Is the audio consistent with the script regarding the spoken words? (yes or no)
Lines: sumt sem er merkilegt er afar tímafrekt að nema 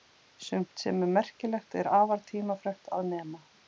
yes